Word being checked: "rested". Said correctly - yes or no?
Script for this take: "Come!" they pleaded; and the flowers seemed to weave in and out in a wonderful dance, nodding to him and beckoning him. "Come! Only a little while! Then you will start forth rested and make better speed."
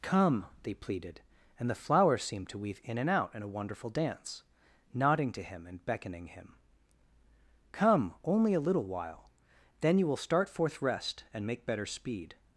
no